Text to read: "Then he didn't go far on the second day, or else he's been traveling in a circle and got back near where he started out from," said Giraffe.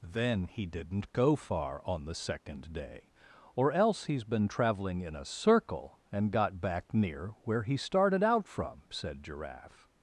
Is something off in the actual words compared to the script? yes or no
no